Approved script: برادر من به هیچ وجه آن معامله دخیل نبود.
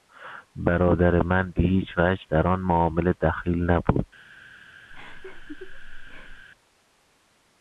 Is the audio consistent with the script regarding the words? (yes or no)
no